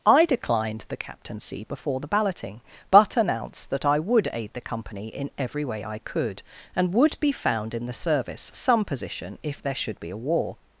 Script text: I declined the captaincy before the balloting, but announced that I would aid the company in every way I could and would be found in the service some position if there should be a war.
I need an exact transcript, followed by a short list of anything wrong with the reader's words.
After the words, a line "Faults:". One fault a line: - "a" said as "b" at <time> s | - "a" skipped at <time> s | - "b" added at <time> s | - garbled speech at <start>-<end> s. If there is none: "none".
I declined the captaincy before the balloting, but announced that I would aid the company in every way I could and would be found in the service some position if there should be a war.
Faults:
none